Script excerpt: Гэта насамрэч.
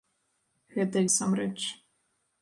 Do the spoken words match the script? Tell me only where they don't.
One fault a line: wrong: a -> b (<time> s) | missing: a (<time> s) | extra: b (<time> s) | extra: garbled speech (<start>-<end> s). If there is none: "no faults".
no faults